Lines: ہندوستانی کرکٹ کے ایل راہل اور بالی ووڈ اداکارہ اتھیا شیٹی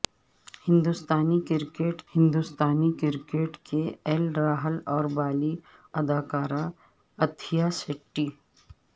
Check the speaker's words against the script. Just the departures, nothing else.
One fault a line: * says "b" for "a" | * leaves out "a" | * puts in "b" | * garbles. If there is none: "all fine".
* puts in "ہندوستانی کرکٹ"
* leaves out "ووڈ"